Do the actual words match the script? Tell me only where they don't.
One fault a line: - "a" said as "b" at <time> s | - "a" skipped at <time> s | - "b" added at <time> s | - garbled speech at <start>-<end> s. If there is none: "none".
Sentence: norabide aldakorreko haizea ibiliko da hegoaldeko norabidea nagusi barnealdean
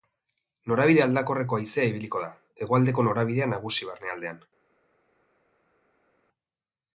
none